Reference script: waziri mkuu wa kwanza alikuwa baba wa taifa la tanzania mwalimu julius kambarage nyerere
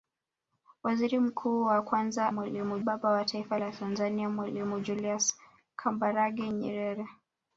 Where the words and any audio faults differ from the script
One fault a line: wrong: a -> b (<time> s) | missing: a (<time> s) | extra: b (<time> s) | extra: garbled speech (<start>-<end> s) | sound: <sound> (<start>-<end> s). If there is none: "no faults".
wrong: alikuwa -> mwalimu (2.3 s)